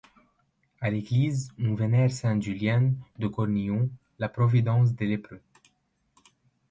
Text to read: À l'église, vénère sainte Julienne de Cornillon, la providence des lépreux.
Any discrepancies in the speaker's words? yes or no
yes